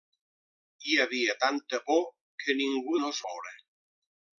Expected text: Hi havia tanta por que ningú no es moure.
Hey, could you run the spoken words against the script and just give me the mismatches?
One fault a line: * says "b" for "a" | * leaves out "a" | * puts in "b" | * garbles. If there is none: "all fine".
all fine